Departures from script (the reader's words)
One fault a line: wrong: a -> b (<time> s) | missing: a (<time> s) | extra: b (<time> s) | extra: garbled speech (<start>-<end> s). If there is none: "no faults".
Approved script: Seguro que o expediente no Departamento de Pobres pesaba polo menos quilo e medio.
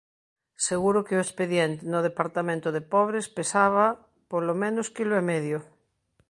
no faults